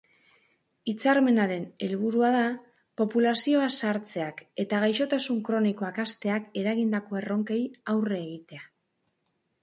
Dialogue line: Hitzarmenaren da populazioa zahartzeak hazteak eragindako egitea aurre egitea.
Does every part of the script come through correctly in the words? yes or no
no